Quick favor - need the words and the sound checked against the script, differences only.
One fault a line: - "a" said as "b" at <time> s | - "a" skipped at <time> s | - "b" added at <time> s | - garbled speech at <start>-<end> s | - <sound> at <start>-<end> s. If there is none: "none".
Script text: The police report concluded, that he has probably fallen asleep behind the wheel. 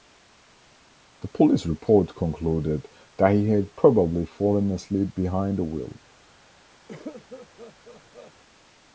- "has" said as "had" at 3.5 s
- cough at 6.9-8.3 s